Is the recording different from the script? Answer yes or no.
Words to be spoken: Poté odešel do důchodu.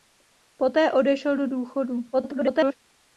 yes